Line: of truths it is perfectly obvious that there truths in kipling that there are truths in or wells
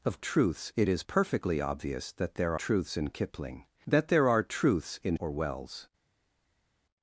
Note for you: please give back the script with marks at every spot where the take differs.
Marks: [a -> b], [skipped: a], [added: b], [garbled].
of truths it is perfectly obvious that there truths in kipling that there are truths in or wells